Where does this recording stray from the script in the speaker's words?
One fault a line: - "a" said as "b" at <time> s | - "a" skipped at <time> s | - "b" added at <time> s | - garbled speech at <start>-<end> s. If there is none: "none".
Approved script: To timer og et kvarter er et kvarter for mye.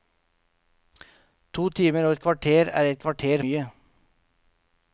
- "for" skipped at 3.4 s